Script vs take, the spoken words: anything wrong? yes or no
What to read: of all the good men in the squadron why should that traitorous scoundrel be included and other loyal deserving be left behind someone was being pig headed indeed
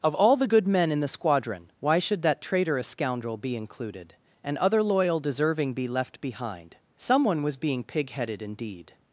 no